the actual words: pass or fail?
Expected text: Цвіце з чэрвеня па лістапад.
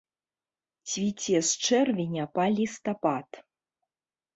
pass